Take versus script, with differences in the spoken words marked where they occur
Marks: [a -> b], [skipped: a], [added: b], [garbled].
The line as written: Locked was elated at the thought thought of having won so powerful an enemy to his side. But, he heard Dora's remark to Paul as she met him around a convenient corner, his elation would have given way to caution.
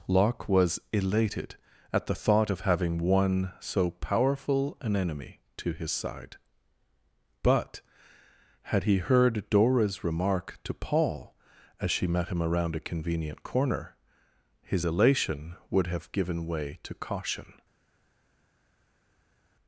[Locked -> Locke] was elated at the thought [skipped: thought] of having won so powerful an enemy to his side. But, [added: had] he heard Dora's remark to Paul as she met him around a convenient corner, his elation would have given way to caution.